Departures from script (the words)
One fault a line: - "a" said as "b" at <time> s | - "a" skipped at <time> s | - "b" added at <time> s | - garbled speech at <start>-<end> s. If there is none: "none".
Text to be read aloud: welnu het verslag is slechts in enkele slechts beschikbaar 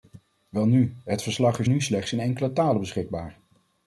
- "nu" added at 1.6 s
- "slechts" said as "talen" at 2.5 s